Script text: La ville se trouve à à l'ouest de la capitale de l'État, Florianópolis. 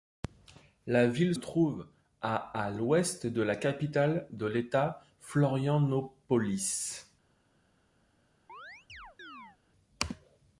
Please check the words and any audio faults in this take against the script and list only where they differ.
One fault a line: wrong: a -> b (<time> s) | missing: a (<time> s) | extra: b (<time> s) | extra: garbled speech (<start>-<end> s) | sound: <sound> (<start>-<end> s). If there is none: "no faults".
missing: se (1.4 s)
sound: chirp (8.5-9.6 s)